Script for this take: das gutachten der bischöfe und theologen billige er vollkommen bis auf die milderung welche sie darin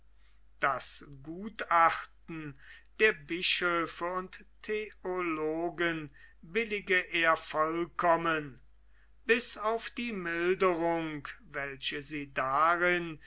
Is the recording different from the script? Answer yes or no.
no